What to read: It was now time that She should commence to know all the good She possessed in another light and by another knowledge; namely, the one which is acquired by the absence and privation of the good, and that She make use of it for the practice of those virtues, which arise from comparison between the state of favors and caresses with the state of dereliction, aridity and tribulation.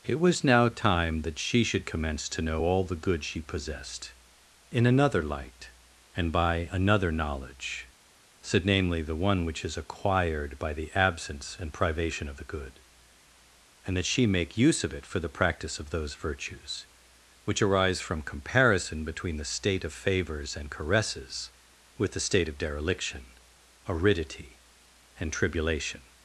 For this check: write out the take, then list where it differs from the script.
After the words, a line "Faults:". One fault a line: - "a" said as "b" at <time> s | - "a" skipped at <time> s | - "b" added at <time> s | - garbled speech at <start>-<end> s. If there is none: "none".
It was now time that She should commence to know all the good She possessed in another light and by another knowledge; said namely, the one which is acquired by the absence and privation of the good, and that She make use of it for the practice of those virtues, which arise from comparison between the state of favors and caresses with the state of dereliction, aridity and tribulation.
Faults:
- "said" added at 8.4 s